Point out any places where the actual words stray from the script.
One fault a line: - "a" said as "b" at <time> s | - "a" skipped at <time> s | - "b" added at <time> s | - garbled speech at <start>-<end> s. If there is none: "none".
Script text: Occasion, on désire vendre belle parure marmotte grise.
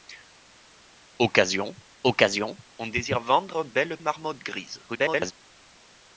- "occasion" added at 2.0 s
- "parure" skipped at 4.0 s
- garbled speech at 4.9-5.3 s